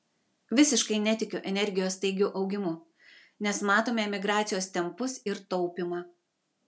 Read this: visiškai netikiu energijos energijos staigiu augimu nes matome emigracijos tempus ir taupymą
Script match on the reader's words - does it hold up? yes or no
no